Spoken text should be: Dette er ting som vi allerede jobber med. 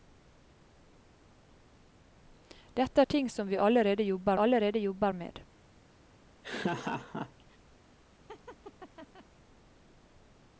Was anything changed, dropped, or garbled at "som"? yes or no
no